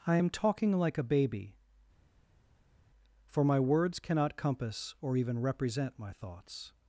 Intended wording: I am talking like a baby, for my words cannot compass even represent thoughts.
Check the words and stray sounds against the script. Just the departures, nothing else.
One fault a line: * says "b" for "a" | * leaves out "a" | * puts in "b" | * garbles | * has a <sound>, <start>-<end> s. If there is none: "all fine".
* puts in "or"
* puts in "my"